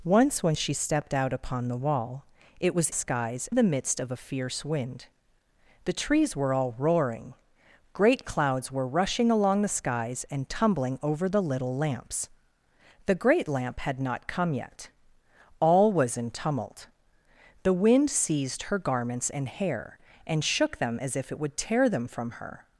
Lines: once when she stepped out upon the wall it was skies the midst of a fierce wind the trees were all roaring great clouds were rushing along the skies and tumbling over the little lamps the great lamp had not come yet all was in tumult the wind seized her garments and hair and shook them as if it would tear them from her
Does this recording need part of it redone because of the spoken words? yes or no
no